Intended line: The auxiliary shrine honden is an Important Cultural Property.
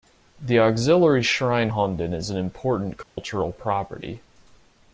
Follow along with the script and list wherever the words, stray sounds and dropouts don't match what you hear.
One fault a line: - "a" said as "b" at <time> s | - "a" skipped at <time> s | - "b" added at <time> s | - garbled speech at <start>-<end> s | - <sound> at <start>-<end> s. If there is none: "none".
- dropout at 3.0-3.2 s